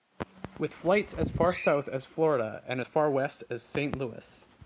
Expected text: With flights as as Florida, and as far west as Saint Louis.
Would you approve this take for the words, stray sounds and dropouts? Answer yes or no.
no